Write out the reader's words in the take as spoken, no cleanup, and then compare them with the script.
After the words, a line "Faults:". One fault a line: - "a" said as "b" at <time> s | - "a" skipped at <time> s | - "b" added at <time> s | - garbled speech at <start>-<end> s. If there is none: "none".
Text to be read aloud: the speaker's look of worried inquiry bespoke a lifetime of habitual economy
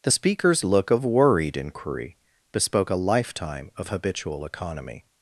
the speaker's look of worried inquiry bespoke a lifetime of habitual economy
Faults:
none